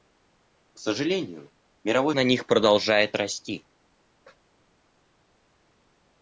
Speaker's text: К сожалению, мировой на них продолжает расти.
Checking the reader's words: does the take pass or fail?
pass